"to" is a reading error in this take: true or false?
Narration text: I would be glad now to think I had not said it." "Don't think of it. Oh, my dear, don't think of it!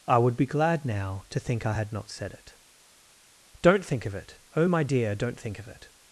false